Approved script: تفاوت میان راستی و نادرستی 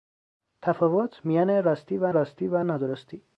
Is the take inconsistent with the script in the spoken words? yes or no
yes